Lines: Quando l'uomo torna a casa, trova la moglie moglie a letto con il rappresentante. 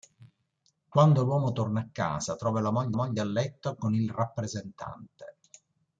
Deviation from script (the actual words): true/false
false